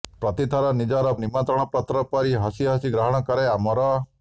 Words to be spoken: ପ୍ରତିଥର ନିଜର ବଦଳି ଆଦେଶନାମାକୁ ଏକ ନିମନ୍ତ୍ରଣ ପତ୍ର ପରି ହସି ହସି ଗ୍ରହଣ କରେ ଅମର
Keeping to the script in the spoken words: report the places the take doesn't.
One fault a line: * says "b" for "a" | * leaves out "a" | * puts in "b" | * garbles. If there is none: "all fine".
* leaves out "ବଦଳି ଆଦେଶନାମାକୁ ଏକ"